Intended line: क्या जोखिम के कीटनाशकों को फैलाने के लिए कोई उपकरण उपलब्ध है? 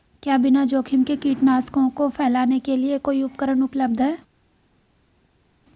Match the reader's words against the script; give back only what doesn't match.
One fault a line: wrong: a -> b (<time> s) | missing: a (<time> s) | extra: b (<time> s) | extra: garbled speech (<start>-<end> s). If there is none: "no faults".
extra: बिना (0.4 s)